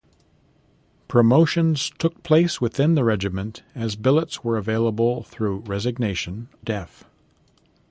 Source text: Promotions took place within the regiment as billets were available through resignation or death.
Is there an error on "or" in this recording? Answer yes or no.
yes